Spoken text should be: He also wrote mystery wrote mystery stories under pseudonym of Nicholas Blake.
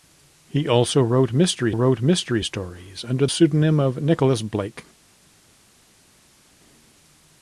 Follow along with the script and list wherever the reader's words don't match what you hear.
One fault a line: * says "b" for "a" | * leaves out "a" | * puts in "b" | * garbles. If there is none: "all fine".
all fine